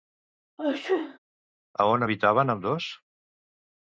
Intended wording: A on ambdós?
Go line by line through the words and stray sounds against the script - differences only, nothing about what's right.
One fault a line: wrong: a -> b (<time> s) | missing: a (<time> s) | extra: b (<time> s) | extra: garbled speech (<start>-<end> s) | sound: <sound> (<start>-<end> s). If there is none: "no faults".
sound: sneeze (0.6-1.2 s)
extra: habitaven (2.0 s)